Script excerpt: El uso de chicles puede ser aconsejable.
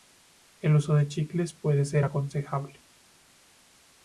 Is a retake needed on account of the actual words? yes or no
no